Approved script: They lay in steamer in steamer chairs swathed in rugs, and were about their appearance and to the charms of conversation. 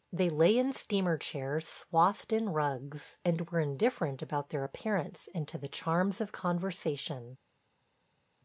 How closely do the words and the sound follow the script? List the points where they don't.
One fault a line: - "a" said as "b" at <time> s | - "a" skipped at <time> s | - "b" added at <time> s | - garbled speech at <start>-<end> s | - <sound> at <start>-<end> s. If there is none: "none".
- "in steamer" skipped at 1.1 s
- "indifferent" added at 3.6 s